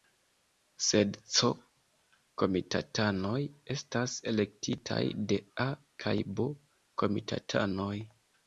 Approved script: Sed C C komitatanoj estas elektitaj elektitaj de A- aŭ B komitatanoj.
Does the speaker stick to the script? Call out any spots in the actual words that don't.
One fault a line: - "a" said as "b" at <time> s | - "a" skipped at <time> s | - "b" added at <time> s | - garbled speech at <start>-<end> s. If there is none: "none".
- "C" skipped at 1.5 s
- "elektitaj" skipped at 5.0 s
- "aŭ" said as "kaj" at 6.1 s